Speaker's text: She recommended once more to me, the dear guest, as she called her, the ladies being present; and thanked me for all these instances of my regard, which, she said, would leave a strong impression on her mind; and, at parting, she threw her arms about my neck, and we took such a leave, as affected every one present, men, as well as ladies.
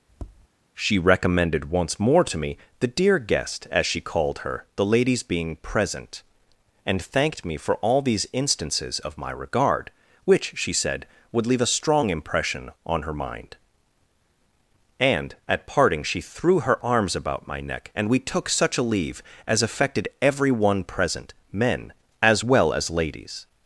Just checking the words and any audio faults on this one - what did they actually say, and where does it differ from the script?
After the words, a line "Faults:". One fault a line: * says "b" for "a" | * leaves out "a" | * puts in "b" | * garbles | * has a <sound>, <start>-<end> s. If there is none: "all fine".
She recommended once more to me, the dear guest, as she called her, the ladies being present; and thanked me for all these instances of my regard, which, she said, would leave a strong impression on her mind; and, at parting, she threw her arms about my neck, and we took such a leave, as affected every one present, men, as well as ladies.
Faults:
* has a tap, 0.1-0.5 s